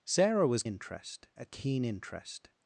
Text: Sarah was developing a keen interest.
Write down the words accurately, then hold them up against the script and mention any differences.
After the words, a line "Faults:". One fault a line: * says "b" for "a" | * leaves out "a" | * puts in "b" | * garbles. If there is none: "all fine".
Sarah was interest a keen interest.
Faults:
* says "interest" for "developing"